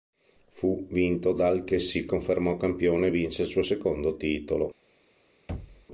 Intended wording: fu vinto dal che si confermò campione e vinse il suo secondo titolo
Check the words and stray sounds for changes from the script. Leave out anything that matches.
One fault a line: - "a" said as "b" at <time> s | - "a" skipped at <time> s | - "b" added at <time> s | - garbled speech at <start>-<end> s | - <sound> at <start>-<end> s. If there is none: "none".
- thud at 5.5-5.9 s